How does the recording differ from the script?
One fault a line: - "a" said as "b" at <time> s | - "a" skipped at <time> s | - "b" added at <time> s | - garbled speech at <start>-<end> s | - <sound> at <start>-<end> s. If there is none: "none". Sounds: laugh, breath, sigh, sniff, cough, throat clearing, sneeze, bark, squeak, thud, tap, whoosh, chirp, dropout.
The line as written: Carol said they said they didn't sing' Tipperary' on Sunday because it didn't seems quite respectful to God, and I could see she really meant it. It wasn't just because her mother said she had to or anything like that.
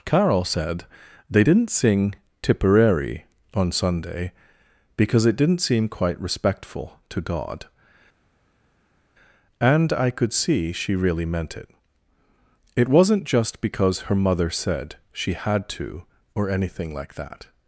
- "said they" skipped at 1.4 s
- "seems" said as "seem" at 5.6 s